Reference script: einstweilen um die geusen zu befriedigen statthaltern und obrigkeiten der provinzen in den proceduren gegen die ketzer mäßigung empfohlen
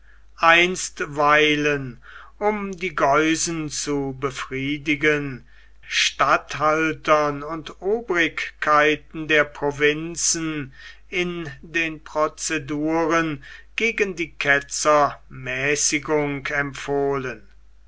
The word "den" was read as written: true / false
true